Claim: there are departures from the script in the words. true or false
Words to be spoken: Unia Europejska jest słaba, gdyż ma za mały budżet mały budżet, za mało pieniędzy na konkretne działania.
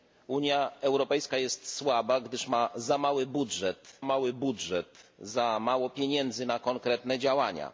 false